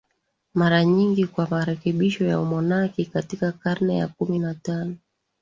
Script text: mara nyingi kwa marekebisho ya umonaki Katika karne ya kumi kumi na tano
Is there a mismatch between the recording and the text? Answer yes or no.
yes